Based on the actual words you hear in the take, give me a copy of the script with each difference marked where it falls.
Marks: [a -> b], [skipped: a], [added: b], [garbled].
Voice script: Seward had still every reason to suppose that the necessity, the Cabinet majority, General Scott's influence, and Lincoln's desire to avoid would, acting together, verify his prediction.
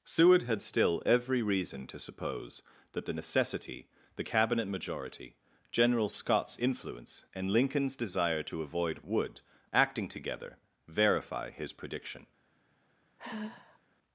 Seward had still every reason to suppose that the necessity, the Cabinet majority, General Scott's influence, and Lincoln's desire to avoid would, acting together, verify his prediction.